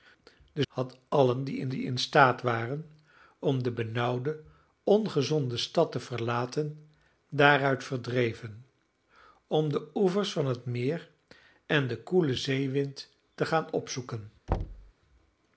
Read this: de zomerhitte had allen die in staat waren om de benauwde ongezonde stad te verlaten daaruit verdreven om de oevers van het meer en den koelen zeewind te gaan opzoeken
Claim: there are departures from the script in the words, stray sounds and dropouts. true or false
true